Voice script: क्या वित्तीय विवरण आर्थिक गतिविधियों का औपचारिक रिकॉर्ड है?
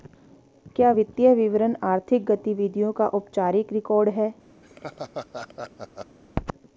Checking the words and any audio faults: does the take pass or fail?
fail